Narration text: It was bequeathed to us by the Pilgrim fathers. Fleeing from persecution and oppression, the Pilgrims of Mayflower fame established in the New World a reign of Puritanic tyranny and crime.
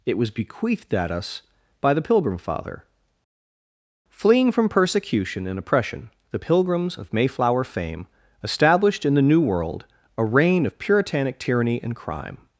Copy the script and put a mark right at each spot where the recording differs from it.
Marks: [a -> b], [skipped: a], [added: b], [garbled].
It was bequeathed [to -> at] us by the Pilgrim [fathers. -> father] Fleeing from persecution and oppression, the Pilgrims of Mayflower fame established in the New World a reign of Puritanic tyranny and crime.